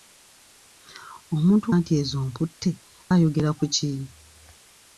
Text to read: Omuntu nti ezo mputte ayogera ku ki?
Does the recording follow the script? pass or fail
pass